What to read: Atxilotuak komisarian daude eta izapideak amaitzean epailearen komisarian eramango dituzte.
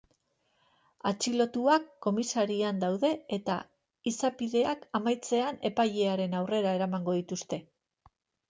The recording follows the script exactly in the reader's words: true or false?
false